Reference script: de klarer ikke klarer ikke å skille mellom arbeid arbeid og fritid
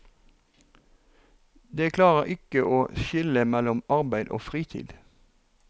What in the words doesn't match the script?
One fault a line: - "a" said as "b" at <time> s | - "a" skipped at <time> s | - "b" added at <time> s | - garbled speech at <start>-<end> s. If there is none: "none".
- "klarer ikke" skipped at 2.6 s
- "arbeid" skipped at 4.3 s